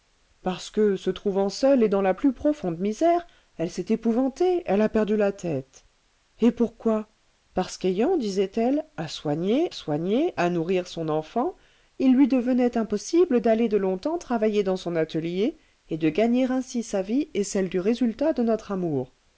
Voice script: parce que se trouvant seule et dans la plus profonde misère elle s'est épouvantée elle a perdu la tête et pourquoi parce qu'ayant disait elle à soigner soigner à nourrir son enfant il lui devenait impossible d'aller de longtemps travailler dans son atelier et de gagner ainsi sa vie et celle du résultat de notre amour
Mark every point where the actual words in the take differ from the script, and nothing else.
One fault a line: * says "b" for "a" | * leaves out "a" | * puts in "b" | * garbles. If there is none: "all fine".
all fine